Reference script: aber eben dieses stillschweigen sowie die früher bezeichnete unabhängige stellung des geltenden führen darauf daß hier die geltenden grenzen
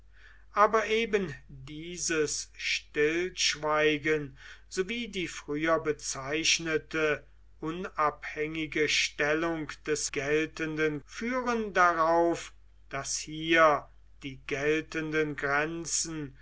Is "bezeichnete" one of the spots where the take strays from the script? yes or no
no